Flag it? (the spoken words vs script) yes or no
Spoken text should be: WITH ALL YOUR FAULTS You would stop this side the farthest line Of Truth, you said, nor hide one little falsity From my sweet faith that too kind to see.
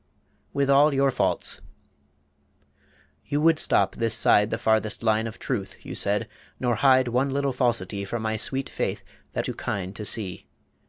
no